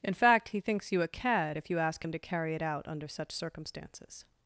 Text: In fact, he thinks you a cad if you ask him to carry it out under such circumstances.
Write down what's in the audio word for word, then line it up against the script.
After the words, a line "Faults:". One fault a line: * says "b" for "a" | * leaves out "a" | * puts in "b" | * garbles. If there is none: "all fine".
In fact, he thinks you a cad if you ask him to carry it out under such circumstances.
Faults:
all fine